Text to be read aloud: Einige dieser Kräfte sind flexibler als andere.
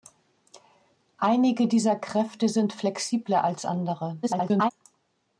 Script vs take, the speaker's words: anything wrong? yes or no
yes